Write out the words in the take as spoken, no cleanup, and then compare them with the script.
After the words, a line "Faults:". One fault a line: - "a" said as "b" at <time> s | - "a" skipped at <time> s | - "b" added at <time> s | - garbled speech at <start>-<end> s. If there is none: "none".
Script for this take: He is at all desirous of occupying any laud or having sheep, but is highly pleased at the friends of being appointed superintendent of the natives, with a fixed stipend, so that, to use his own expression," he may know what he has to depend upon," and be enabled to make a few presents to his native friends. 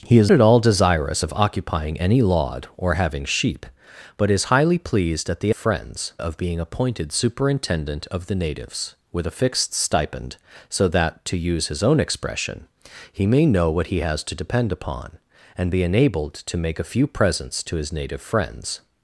He is at all desirous of occupying any laud or having sheep, but is highly pleased at the friends of being appointed superintendent of the natives, with a fixed stipend, so that, to use his own expression," he may know what he has to depend upon," and be enabled to make a few presents to his native friends.
Faults:
none